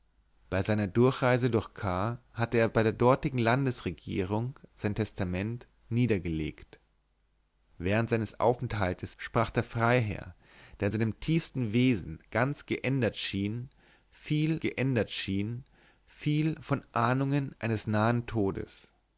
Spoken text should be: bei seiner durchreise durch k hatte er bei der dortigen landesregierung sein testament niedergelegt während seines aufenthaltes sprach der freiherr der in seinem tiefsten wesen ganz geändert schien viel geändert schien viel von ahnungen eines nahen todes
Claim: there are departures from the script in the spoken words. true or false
false